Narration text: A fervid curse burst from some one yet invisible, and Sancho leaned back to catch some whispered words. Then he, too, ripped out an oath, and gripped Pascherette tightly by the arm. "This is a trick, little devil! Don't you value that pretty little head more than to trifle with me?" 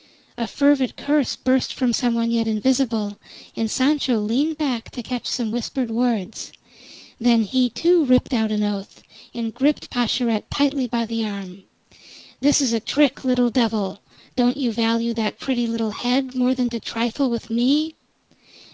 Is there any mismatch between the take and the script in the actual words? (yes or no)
no